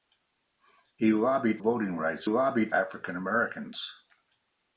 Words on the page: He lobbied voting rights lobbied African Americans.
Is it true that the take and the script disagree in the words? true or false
false